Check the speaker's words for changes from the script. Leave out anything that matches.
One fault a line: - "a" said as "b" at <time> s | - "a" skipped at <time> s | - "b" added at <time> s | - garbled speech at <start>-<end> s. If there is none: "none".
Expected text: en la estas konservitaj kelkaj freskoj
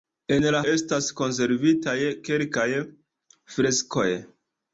none